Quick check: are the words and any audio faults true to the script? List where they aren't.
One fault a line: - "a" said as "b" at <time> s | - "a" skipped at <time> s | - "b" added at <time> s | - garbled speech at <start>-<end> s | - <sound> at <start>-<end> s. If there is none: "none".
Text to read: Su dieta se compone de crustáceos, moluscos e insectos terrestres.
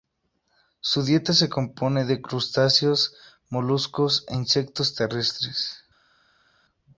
none